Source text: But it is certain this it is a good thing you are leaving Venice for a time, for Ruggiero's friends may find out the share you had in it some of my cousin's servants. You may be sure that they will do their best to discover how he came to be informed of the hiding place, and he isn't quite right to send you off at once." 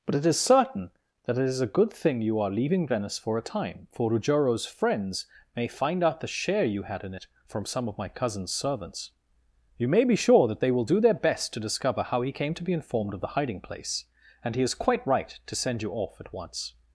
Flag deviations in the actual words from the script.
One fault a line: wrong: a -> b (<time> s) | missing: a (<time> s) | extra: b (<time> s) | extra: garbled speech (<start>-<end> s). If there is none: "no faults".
wrong: this -> that (1.2 s)
extra: from (7.4 s)
wrong: isn't -> is (14.6 s)